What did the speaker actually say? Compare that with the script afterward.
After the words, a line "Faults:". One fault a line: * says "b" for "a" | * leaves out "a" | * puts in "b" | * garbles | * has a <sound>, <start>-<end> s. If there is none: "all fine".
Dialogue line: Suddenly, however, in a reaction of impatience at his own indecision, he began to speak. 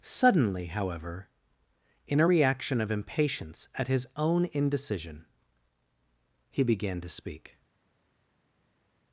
Suddenly, however, in a reaction of impatience at his own indecision, he began to speak.
Faults:
all fine